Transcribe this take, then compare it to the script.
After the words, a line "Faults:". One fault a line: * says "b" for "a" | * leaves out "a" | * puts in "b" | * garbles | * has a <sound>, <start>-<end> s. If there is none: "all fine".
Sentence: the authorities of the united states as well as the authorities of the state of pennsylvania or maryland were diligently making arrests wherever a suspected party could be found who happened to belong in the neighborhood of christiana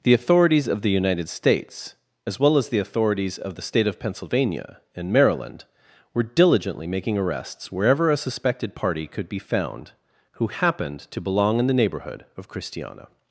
the authorities of the united states as well as the authorities of the state of pennsylvania and maryland were diligently making arrests wherever a suspected party could be found who happened to belong in the neighborhood of christiana
Faults:
* says "and" for "or"